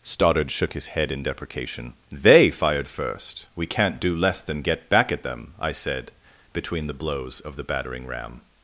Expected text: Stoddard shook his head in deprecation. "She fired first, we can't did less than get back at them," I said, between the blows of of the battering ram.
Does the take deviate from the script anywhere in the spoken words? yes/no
yes